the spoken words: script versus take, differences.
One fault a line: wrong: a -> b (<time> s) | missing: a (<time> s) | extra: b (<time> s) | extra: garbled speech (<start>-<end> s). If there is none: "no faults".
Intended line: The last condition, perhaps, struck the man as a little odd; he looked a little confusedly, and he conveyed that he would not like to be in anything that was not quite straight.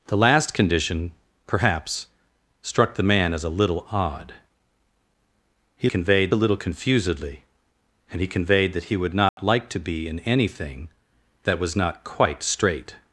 wrong: looked -> conveyed (5.8 s)